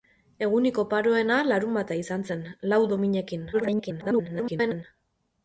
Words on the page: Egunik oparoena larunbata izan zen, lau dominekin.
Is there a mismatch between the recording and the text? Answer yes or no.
yes